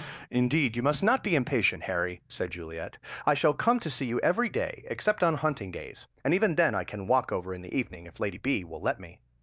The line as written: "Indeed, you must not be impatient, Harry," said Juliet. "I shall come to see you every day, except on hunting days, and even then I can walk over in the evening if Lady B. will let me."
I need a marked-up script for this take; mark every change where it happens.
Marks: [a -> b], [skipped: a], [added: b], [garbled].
"Indeed, you must not be impatient, Harry," said Juliet. "I shall come to see you every day, except on hunting days, and even then I can walk over in the evening if Lady B. will let me."